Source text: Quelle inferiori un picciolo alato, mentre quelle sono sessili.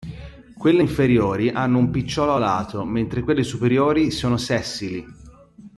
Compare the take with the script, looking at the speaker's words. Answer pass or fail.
fail